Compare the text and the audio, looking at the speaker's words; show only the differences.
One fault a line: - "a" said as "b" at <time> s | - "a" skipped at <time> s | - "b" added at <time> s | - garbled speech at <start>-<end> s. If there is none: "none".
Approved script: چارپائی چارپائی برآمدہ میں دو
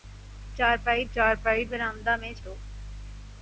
none